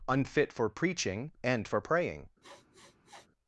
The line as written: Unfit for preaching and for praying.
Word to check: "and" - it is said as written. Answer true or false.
true